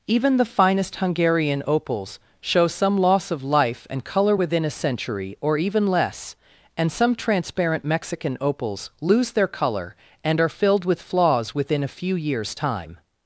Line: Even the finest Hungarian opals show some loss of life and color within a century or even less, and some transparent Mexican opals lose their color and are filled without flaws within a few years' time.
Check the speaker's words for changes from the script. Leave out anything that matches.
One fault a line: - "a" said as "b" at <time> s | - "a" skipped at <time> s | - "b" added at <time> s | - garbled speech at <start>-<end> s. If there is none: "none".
- "without" said as "with" at 10.8 s